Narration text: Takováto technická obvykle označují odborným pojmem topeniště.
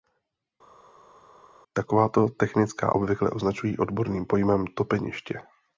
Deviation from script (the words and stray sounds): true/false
false